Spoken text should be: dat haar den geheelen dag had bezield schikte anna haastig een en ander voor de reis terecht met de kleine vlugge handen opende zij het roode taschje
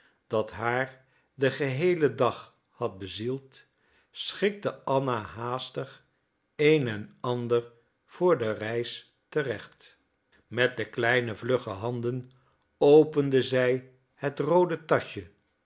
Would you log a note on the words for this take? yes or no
no